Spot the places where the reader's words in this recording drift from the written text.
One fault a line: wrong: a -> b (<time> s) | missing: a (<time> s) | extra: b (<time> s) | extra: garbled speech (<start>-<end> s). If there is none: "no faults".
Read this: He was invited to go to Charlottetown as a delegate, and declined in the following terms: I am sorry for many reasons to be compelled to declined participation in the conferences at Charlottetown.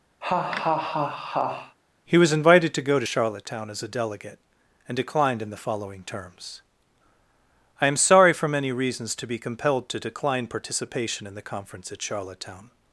wrong: declined -> decline (10.0 s)
wrong: conferences -> conference (11.4 s)